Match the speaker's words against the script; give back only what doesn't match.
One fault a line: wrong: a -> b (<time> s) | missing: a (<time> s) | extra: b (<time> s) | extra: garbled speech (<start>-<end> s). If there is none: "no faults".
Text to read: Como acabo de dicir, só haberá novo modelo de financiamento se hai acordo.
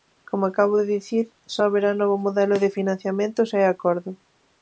no faults